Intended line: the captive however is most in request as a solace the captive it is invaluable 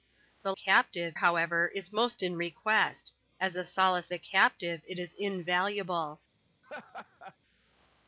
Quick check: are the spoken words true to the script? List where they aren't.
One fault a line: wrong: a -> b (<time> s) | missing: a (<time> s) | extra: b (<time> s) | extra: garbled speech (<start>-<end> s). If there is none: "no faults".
no faults